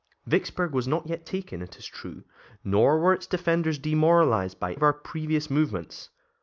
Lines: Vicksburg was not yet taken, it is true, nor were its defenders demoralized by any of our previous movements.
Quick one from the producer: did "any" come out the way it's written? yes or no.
no